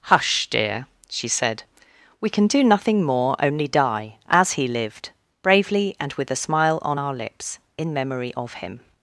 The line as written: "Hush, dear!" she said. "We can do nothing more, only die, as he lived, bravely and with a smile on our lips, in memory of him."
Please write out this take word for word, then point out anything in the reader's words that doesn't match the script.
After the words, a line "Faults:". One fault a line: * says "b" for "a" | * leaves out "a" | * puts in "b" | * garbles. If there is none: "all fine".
"Hush, dear!" she said. "We can do nothing more, only die, as he lived, bravely and with a smile on our lips, in memory of him."
Faults:
all fine